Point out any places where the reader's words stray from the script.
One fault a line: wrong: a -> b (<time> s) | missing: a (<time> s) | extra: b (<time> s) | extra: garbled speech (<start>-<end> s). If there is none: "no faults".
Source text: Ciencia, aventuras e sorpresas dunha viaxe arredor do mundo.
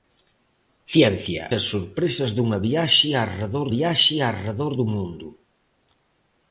missing: aventuras (1.4 s)
extra: viaxe arredor (3.7 s)